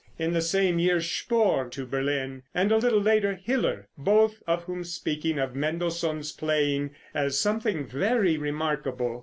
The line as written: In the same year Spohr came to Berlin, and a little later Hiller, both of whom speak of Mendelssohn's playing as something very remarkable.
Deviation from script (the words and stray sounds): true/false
true